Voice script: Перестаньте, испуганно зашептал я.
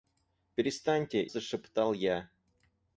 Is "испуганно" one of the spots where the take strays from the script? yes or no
yes